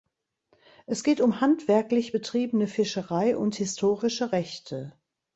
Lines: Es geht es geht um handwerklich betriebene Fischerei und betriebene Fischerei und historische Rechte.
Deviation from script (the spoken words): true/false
true